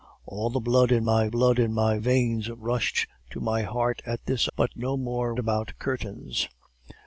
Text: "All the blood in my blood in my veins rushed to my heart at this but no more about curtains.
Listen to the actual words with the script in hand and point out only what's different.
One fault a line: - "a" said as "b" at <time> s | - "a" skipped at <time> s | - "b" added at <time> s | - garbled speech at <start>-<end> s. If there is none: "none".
none